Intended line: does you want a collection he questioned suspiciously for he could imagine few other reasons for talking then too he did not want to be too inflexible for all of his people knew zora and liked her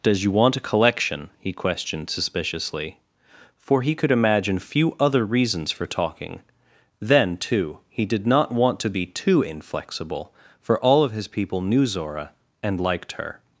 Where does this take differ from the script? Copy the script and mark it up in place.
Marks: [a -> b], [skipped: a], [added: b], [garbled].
does you want a collection he questioned suspiciously for he could imagine few other reasons for talking then too he did not want to be too inflexible for all of his people knew zora and liked her